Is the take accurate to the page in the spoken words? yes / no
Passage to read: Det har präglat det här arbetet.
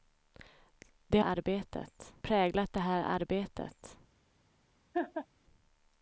no